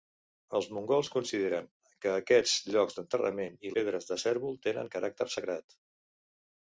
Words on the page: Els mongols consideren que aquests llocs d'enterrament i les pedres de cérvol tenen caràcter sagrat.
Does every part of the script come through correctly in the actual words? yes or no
no